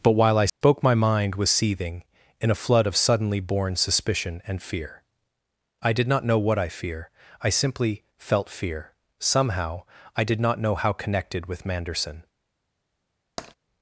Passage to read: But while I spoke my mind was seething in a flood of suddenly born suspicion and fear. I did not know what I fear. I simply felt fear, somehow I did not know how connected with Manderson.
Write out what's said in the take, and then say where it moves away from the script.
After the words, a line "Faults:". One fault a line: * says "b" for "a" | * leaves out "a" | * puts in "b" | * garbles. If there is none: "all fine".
But while I spoke my mind was seething in a flood of suddenly born suspicion and fear. I did not know what I fear. I simply felt fear, somehow I did not know how connected with Manderson.
Faults:
all fine